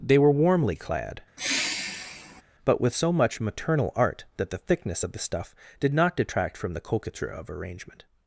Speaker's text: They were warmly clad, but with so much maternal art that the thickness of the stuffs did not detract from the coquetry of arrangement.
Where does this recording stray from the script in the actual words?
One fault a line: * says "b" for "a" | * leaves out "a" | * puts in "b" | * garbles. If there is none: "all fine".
* says "stuff" for "stuffs"